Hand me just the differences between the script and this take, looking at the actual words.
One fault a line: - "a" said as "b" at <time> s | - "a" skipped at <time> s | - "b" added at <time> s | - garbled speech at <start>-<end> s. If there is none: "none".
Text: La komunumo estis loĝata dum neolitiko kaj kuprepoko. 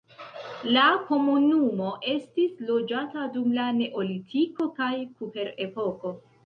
- "la" added at 3.6 s